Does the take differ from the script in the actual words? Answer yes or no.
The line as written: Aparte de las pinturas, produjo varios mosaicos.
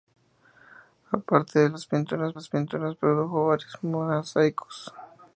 yes